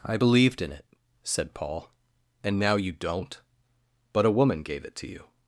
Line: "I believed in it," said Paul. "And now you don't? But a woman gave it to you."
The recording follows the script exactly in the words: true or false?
true